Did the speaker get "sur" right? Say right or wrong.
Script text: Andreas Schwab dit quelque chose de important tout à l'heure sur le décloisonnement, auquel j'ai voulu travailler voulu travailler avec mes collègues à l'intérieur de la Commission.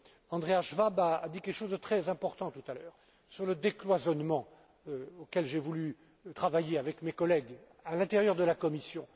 right